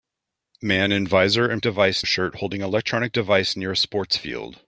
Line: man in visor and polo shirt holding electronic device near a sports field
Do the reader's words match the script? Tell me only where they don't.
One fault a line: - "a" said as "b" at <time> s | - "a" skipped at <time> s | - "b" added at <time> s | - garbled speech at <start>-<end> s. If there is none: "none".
- "polo" said as "device" at 1.6 s